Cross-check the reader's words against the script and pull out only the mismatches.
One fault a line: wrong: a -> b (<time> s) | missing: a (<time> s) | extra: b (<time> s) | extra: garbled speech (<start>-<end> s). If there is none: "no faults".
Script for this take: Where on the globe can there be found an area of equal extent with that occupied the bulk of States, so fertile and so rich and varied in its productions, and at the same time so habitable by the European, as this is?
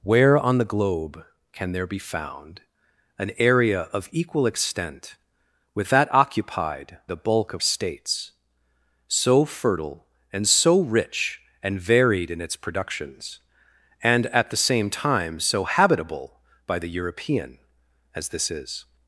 no faults